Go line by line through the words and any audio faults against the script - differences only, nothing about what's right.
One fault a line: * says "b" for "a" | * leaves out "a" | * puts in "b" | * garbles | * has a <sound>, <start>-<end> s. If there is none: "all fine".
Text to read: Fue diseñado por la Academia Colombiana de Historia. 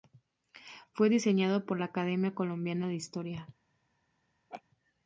* has a laugh, 4.5-4.6 s